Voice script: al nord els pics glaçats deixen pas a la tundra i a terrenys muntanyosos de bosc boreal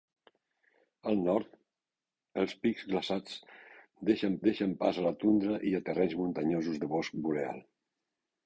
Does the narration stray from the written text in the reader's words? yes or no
yes